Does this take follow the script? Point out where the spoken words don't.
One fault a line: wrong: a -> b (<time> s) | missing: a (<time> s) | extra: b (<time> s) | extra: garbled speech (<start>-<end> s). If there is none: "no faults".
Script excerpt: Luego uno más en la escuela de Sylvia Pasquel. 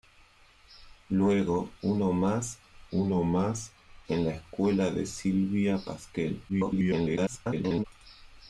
extra: uno más (2.9 s)
extra: garbled speech (6.5-7.8 s)